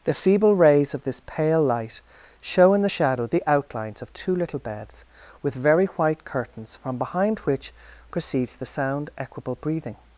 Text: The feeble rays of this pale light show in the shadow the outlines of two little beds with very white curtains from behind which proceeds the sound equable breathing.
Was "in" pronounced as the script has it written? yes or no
yes